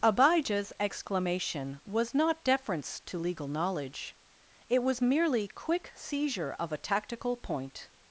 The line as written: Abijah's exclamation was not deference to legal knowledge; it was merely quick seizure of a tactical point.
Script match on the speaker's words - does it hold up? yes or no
yes